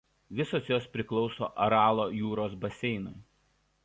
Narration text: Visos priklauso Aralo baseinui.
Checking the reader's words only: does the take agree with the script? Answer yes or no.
no